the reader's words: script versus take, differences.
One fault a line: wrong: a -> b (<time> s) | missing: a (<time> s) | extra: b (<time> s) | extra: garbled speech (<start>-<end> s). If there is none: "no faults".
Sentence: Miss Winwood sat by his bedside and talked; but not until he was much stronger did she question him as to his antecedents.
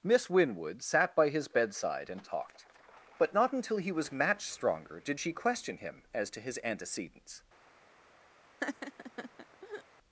wrong: much -> match (4.1 s)